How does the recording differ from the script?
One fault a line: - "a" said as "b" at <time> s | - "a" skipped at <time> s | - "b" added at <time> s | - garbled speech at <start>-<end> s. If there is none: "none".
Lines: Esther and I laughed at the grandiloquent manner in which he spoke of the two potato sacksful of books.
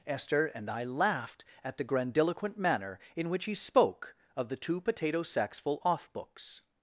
- "of" said as "off" at 5.8 s